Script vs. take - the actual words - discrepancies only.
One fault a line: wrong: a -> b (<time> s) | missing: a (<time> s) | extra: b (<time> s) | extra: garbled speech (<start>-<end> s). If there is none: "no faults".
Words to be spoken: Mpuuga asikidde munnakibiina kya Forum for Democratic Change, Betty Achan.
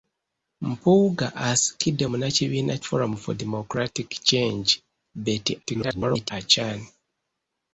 missing: kya (2.8 s)
extra: garbled speech (5.6-6.3 s)